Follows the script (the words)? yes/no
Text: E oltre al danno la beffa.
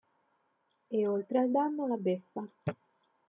yes